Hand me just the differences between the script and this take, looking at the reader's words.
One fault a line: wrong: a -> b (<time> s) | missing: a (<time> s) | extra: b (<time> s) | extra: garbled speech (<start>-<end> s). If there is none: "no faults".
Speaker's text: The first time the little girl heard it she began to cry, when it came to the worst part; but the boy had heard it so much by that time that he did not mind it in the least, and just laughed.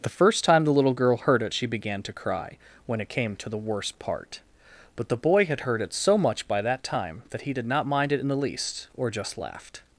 wrong: and -> or (9.0 s)